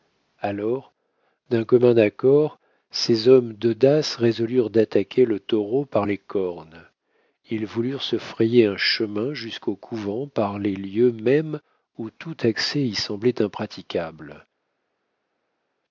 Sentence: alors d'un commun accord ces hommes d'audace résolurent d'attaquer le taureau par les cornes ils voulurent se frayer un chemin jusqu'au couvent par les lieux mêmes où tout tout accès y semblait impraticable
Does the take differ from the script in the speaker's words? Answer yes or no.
yes